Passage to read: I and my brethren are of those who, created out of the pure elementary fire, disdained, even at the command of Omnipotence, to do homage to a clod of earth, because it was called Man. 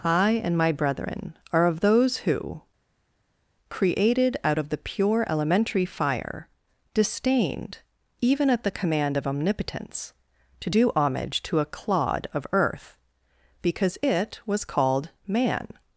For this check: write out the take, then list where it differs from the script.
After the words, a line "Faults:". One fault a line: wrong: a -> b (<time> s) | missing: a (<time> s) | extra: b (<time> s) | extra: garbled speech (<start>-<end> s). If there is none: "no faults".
I and my brethren are of those who, created out of the pure elementary fire, disdained, even at the command of Omnipotence, to do homage to a clod of earth, because it was called Man.
Faults:
no faults